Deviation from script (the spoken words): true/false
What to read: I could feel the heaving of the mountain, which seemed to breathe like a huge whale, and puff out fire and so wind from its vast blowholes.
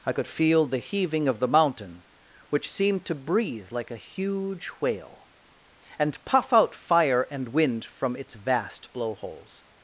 true